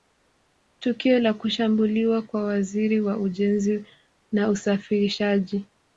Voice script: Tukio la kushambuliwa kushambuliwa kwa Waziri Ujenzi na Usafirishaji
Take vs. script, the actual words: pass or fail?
fail